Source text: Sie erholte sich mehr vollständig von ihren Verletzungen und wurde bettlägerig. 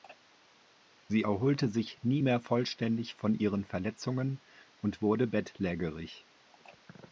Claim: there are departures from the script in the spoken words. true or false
true